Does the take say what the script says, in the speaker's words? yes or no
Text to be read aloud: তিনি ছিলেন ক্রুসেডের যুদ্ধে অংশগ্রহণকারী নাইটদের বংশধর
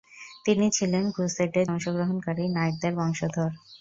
no